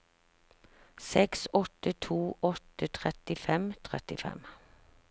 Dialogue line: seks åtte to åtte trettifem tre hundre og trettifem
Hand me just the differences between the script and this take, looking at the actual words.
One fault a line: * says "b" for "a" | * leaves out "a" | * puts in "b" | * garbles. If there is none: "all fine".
* leaves out "tre hundre"